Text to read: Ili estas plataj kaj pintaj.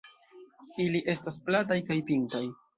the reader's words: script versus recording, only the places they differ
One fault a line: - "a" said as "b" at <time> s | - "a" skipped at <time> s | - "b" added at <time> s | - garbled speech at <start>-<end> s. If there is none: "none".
none